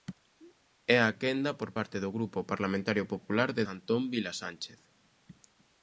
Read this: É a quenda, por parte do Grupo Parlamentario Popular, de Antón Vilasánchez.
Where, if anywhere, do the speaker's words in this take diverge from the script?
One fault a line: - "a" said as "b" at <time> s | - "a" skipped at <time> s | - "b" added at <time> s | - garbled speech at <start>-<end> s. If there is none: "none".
none